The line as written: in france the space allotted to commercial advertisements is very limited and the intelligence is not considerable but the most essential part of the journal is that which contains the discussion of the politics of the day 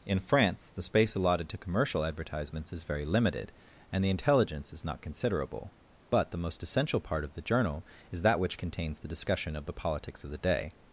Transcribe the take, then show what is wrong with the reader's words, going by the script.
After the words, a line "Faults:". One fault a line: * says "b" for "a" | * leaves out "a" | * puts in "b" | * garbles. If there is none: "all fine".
in france the space allotted to commercial advertisements is very limited and the intelligence is not considerable but the most essential part of the journal is that which contains the discussion of the politics of the day
Faults:
all fine